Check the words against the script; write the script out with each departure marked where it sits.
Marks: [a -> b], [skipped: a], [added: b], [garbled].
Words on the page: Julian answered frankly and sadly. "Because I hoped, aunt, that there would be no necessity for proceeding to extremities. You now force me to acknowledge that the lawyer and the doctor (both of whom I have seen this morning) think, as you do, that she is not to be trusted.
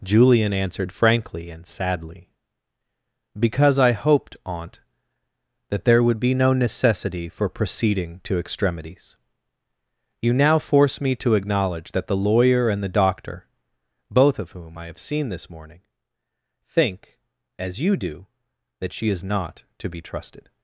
Julian answered frankly and sadly. "Because I hoped, aunt, that there would be no necessity for proceeding to extremities. You now force me to acknowledge that the lawyer and the doctor (both of whom I have seen this morning) think, as you do, that she is not to be trusted.